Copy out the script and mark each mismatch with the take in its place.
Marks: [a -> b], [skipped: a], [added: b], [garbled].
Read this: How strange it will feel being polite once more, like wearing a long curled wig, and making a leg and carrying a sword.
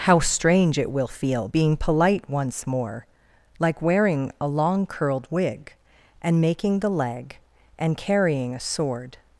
How strange it will feel being polite once more, like wearing a long curled wig, and making [a -> the] leg and carrying a sword.